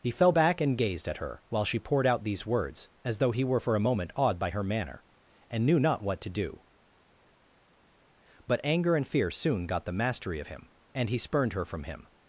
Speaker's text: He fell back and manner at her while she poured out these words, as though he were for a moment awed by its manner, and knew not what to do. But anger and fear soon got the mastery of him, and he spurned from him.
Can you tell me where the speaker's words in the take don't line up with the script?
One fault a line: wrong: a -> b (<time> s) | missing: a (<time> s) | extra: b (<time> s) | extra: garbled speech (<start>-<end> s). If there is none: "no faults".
wrong: manner -> gazed (0.8 s)
wrong: its -> her (4.5 s)
extra: her (11.5 s)